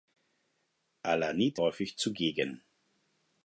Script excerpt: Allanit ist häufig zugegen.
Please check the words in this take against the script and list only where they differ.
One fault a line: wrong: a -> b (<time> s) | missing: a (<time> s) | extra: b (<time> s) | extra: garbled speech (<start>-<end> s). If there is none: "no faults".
missing: ist (1.6 s)